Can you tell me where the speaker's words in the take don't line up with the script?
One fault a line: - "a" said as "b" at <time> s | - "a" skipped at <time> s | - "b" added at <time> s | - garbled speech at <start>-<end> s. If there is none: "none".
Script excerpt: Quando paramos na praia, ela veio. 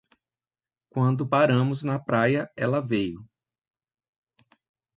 none